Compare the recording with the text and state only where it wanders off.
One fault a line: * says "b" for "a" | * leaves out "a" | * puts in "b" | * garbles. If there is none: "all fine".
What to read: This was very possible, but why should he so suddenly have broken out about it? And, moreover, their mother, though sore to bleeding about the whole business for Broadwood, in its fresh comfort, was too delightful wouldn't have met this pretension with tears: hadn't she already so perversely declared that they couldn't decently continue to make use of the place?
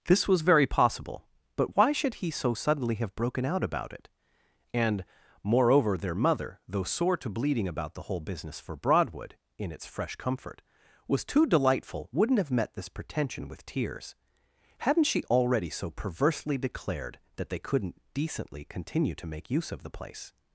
all fine